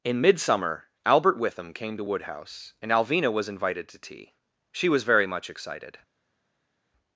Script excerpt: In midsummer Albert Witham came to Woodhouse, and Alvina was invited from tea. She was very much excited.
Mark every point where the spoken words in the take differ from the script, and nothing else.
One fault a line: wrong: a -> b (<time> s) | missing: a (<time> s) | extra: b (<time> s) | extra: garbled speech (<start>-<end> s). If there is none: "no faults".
wrong: from -> to (3.9 s)